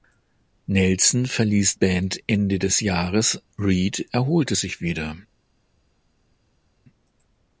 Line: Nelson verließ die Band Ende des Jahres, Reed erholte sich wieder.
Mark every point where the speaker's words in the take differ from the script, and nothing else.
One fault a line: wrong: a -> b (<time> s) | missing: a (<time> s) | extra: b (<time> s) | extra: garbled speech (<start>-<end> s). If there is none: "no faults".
missing: die (1.8 s)